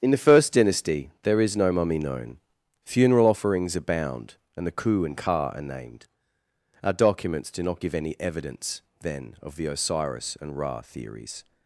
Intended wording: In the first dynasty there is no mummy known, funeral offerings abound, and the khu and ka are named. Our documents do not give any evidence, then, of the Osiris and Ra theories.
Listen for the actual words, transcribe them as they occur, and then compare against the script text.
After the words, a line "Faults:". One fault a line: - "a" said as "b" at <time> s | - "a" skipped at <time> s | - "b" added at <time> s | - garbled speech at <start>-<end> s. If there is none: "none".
In the first dynasty there is no mummy known, funeral offerings abound, and the khu and ka are named. Our documents do not give any evidence, then, of the Osiris and Ra theories.
Faults:
none